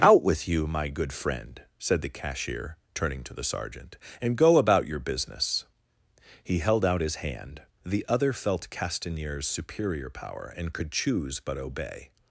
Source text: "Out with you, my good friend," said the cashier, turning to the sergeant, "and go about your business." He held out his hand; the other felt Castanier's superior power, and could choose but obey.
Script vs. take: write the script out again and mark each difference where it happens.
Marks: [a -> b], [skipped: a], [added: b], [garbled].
"Out with you, my good friend," said the cashier, turning to the sergeant, "and go about your business." He held out his hand; the other felt Castanier's superior power, and could choose but obey.